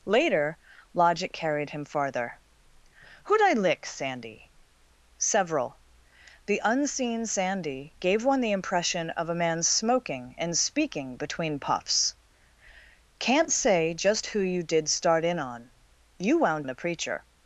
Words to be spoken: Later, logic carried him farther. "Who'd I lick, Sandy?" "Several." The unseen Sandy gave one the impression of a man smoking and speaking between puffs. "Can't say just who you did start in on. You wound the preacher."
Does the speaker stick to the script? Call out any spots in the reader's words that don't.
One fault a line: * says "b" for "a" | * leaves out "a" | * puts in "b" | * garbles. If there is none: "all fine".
all fine